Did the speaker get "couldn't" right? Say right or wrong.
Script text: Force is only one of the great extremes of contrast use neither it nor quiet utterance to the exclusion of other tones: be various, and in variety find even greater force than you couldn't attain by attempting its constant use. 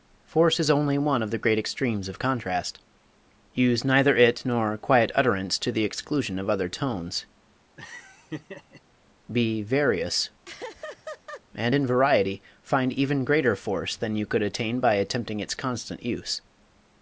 wrong